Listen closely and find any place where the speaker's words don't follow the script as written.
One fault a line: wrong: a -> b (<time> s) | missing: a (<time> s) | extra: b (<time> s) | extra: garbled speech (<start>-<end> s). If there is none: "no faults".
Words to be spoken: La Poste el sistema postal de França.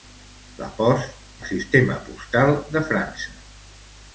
no faults